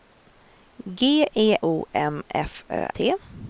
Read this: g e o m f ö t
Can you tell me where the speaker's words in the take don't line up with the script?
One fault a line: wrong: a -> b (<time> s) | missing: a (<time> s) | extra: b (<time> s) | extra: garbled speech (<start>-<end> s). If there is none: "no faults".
no faults